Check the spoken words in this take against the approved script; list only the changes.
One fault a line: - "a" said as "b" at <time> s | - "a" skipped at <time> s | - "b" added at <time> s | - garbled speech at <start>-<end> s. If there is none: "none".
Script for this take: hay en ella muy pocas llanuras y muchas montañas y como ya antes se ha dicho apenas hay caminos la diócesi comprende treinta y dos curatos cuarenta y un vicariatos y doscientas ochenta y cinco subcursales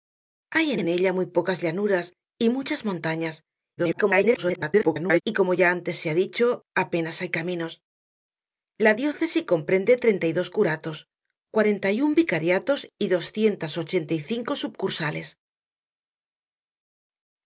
- "en" added at 0.8 s
- garbled speech at 3.8-5.2 s